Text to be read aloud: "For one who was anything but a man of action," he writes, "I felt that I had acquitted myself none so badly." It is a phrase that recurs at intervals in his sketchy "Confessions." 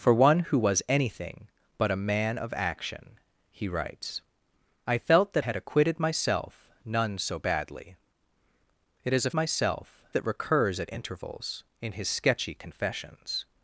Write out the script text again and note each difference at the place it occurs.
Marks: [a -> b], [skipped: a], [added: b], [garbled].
"For one who was anything but a man of action," he writes, "I felt that [skipped: I] had acquitted myself none so badly." It is a [phrase -> myself] that recurs at intervals in his sketchy "Confessions."